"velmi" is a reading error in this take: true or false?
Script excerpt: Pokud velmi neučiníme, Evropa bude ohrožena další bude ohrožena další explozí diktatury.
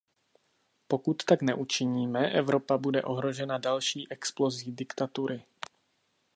true